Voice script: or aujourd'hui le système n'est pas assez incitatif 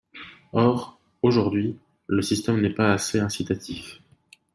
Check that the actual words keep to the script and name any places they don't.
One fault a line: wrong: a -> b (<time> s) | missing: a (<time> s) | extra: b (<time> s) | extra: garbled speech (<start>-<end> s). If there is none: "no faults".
no faults